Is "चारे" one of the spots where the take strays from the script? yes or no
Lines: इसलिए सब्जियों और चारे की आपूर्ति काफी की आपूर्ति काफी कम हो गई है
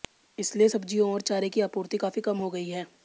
no